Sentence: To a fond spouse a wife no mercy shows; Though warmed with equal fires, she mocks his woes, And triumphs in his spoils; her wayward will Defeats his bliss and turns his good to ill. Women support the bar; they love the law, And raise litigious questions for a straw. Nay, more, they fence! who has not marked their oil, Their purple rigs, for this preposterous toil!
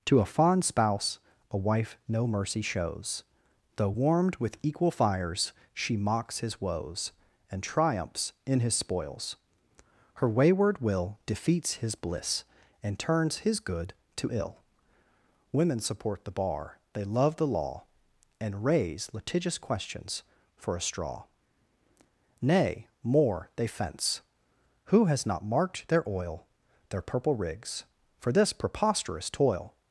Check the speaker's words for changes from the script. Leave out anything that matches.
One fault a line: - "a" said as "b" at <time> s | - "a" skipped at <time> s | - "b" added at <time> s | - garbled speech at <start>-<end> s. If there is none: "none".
none